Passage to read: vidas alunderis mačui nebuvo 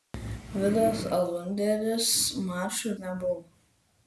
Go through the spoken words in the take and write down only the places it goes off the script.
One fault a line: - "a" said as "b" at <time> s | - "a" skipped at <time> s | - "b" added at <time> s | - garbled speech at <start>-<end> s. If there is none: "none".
none